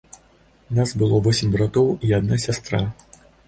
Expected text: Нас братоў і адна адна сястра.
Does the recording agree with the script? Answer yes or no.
no